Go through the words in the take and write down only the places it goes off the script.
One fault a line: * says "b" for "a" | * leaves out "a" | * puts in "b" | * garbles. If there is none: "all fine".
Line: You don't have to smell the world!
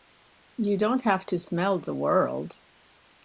all fine